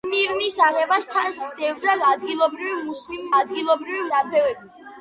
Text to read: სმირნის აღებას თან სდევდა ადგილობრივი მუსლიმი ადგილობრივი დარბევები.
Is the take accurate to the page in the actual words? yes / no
yes